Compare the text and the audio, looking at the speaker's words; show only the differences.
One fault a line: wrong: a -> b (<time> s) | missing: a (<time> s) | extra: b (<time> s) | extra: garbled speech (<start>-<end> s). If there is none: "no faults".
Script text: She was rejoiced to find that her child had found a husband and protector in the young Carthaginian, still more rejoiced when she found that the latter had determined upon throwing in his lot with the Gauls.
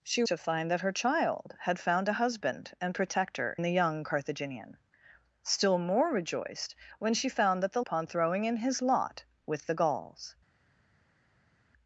missing: was rejoiced (0.2 s)
missing: in (3.6 s)
missing: latter had determined (7.8 s)